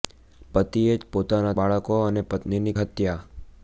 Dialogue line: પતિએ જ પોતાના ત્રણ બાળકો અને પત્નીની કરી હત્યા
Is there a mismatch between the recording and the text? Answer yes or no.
yes